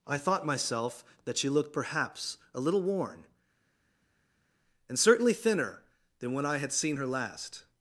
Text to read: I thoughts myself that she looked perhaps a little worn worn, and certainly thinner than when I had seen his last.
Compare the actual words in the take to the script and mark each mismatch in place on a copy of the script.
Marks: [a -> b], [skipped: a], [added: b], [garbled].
I [thoughts -> thought] myself that she looked perhaps a little worn [skipped: worn,] and certainly thinner than when I had seen [his -> her] last.